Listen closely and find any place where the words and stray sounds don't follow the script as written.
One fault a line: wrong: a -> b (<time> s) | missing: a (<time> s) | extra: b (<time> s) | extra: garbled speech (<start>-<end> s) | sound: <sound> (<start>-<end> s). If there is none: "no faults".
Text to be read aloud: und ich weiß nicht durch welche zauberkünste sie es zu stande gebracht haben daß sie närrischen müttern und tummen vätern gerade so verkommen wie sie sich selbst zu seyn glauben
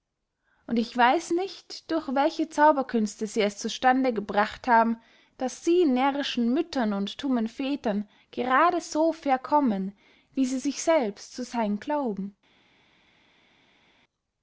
no faults